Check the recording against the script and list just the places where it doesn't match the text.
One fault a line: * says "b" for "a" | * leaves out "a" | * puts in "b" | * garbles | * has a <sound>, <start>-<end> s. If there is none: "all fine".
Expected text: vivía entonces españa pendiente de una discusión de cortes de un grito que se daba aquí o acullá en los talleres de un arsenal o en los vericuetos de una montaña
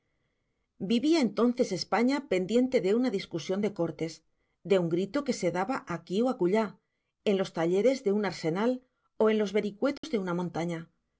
* has a dropout, 10.0-10.0 s